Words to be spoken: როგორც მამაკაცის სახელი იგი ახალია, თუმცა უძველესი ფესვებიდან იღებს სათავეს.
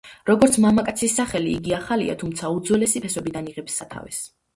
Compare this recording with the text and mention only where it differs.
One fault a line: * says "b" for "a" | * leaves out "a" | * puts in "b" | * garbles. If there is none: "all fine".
all fine